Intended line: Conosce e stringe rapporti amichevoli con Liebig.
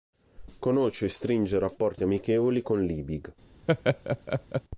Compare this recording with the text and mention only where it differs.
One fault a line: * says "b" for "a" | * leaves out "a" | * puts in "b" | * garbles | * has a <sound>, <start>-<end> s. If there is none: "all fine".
* has a laugh, 3.7-4.6 s